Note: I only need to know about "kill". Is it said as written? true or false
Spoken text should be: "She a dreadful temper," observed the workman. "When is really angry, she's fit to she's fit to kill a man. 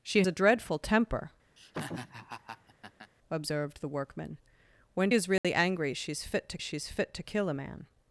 true